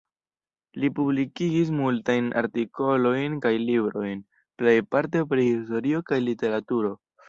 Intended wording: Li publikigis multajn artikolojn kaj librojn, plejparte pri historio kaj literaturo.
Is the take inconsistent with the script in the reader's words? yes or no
no